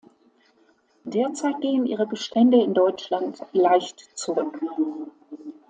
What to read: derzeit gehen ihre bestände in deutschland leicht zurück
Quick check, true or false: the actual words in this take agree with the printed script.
true